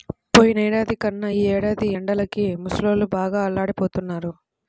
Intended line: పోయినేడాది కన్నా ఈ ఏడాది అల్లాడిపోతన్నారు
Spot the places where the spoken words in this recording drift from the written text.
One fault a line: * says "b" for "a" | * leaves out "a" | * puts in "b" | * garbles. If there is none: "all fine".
* puts in "ఎండలకి ముసలోళ్ళు బాగా"